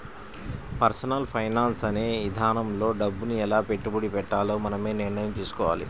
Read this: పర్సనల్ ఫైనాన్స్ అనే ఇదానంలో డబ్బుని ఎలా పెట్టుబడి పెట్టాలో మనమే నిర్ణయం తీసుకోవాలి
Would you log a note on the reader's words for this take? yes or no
no